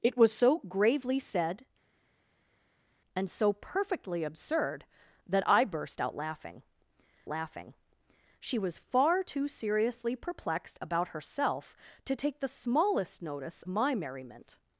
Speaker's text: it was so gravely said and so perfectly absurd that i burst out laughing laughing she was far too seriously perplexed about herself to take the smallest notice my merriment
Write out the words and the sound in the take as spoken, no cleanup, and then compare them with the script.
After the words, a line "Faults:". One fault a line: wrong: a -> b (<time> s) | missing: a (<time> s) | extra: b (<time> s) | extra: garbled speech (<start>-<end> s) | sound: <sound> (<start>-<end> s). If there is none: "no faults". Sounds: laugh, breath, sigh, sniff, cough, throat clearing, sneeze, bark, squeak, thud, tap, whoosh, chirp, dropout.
it was so gravely said and so perfectly absurd that i burst out laughing laughing she was far too seriously perplexed about herself to take the smallest notice my merriment
Faults:
no faults